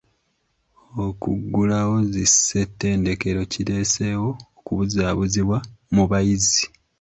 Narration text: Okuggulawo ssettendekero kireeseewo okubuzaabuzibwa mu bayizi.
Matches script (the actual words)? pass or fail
fail